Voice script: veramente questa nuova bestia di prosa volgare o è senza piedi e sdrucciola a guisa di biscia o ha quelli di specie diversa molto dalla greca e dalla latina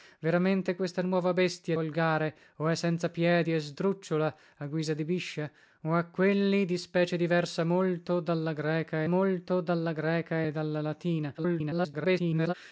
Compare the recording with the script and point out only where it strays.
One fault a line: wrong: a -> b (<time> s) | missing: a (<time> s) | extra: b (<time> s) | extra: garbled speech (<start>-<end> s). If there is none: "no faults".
missing: di prosa (1.8 s)
extra: molto dalla greca (9.1 s)
extra: garbled speech (11.4-12.5 s)